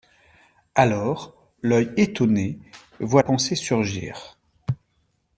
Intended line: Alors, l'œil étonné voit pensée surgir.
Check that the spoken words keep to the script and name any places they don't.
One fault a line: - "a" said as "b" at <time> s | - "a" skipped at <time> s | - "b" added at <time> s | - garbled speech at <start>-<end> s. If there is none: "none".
none